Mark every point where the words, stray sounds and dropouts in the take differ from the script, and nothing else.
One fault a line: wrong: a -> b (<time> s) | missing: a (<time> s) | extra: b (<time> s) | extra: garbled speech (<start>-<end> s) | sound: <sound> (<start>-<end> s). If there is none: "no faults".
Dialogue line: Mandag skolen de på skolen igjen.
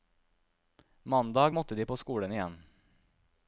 wrong: skolen -> måtte (1.5 s)